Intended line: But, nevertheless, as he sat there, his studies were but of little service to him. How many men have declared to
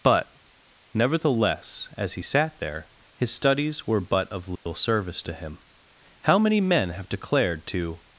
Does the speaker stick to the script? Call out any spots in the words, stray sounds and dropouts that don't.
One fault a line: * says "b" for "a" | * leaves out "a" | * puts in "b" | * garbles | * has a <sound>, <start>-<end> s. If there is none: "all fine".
* has a dropout, 4.6-4.7 s